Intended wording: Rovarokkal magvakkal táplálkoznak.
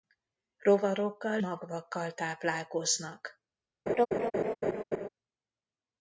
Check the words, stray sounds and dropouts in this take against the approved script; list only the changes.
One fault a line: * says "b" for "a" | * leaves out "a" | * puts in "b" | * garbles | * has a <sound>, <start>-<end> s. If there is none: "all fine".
* has a laugh, 3.9-5.1 s